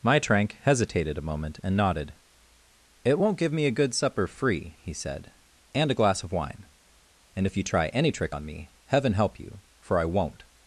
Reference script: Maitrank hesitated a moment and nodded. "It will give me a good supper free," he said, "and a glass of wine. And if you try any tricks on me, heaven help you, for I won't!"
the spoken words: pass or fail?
fail